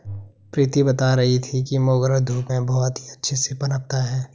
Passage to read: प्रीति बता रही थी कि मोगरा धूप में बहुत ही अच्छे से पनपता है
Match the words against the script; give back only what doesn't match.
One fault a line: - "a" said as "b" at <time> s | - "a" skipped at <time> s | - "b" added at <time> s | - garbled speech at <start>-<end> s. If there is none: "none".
none